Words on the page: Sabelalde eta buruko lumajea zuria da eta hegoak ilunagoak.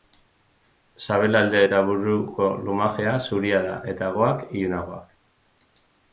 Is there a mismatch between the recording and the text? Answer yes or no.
no